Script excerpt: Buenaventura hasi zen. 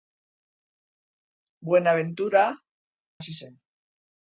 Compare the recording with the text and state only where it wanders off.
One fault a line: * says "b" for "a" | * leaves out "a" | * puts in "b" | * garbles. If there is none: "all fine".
all fine